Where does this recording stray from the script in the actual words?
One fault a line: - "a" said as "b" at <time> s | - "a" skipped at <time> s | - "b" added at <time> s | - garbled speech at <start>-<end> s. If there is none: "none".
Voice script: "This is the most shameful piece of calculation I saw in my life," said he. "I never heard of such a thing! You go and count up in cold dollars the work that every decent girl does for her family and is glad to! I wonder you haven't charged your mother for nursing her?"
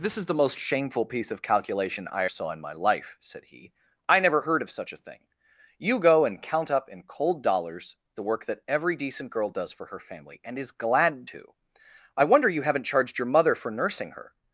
none